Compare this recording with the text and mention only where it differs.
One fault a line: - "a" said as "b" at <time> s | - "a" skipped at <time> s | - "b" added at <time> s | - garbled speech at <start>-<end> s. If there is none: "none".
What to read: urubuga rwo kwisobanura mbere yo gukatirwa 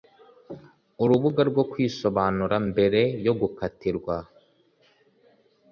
none